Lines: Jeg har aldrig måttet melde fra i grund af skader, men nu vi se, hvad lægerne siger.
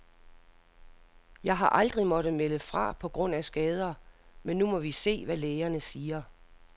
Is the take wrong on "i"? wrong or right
wrong